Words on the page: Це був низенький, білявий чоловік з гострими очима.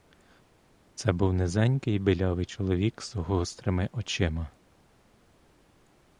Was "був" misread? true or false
false